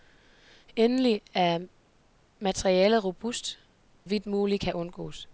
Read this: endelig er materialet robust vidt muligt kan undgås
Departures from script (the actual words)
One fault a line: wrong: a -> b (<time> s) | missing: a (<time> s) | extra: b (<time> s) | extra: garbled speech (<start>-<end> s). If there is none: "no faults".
no faults